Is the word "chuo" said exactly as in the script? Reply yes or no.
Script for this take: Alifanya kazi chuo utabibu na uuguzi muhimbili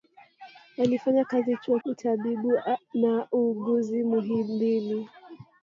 yes